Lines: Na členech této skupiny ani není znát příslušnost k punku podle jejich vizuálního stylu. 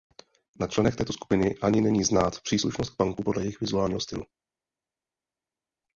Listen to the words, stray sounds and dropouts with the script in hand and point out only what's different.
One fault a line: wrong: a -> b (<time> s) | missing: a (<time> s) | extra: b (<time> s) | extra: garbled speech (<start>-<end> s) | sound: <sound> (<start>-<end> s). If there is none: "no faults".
no faults